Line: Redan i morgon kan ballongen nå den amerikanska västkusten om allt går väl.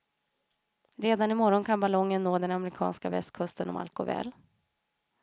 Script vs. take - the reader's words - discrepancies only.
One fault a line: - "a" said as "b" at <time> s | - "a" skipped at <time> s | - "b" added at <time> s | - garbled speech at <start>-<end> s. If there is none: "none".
none